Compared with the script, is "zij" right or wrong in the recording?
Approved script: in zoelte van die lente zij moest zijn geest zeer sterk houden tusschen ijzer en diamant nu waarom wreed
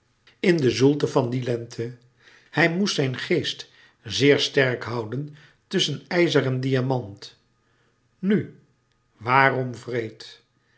wrong